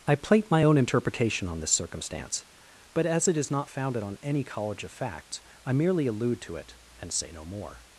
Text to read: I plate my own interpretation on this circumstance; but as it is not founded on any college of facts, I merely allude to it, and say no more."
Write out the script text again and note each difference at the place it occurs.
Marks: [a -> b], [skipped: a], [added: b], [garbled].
I plate my own interpretation on this circumstance; but as it is not founded on any college of facts, I merely allude to it, and say no more."